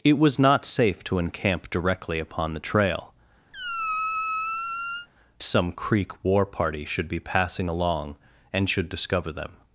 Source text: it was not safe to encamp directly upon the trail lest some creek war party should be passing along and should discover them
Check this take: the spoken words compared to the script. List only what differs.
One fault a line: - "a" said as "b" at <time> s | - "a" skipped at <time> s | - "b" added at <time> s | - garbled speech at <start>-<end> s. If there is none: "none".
- "lest" skipped at 3.1 s